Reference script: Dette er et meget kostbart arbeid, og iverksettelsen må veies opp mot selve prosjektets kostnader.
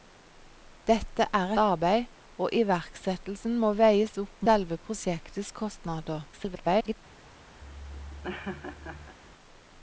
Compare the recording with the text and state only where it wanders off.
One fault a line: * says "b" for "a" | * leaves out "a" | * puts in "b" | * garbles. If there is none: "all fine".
* leaves out "et meget kostbart"
* leaves out "mot"
* garbles